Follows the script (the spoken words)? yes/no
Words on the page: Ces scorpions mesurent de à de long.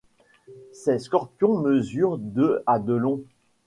yes